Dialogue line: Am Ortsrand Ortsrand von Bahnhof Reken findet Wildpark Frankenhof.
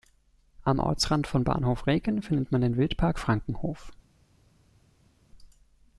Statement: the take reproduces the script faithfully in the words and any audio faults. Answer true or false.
false